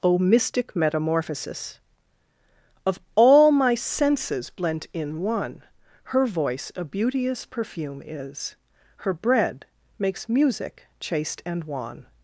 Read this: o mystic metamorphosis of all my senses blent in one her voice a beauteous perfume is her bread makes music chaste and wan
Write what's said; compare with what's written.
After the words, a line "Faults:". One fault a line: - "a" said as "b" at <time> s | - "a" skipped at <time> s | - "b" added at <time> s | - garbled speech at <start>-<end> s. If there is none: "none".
o mystic metamorphosis of all my senses blent in one her voice a beauteous perfume is her bread makes music chaste and wan
Faults:
none